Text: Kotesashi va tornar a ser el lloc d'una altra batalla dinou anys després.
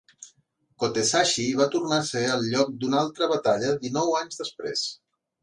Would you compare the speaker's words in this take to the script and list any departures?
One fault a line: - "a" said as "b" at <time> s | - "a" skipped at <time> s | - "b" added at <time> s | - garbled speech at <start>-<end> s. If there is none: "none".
none